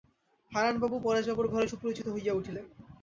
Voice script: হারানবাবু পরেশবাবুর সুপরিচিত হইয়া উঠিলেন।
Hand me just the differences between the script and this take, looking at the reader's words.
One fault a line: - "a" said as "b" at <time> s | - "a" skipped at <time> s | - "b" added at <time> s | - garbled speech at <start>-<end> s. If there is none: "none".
- "ঘরে" added at 1.5 s